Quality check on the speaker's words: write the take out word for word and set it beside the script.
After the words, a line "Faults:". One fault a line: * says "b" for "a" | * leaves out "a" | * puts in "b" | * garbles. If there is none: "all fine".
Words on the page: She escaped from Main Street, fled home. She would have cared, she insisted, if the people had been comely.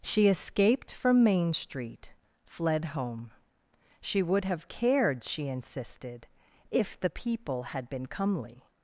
She escaped from Main Street, fled home. She would have cared, she insisted, if the people had been comely.
Faults:
all fine